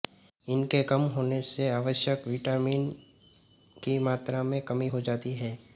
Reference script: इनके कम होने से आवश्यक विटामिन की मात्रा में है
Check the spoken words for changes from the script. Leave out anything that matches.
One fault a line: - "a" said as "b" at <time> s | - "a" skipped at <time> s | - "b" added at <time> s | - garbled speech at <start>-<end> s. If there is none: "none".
- "कमी हो जाती" added at 4.6 s